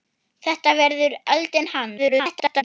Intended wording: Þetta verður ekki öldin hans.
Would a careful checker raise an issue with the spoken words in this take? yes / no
yes